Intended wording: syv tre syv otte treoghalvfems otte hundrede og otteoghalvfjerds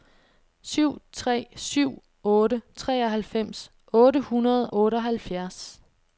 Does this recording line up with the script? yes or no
no